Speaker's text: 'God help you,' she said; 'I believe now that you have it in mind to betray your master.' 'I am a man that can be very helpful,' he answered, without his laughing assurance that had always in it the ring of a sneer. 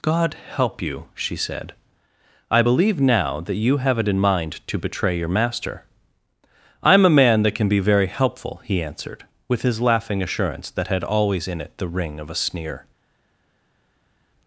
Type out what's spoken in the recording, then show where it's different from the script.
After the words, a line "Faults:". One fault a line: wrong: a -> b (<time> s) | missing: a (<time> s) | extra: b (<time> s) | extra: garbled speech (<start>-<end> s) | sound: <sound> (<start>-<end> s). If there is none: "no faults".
'God help you,' she said; 'I believe now that you have it in mind to betray your master.' 'I am a man that can be very helpful,' he answered, with his laughing assurance that had always in it the ring of a sneer.
Faults:
wrong: without -> with (9.5 s)